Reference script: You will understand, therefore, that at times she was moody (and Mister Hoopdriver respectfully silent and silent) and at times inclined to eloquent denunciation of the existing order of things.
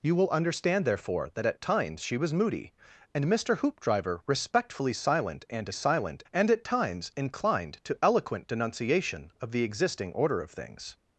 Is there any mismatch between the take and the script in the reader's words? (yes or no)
no